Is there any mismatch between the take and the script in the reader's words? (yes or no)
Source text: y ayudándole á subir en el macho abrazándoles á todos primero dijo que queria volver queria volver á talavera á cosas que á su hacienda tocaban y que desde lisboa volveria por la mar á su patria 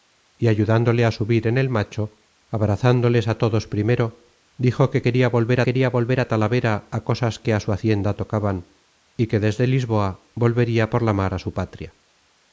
no